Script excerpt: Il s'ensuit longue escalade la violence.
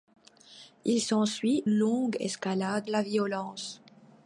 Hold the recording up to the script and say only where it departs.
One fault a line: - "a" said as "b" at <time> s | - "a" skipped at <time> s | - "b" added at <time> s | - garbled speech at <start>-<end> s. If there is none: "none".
none